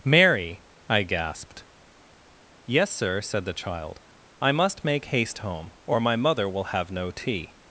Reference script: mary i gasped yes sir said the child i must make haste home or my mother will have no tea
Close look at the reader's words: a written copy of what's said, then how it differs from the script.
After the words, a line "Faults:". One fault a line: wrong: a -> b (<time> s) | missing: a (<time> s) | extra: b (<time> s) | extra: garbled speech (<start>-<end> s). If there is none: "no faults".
mary i gasped yes sir said the child i must make haste home or my mother will have no tea
Faults:
no faults